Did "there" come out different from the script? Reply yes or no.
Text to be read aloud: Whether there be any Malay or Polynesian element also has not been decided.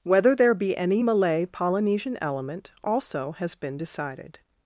no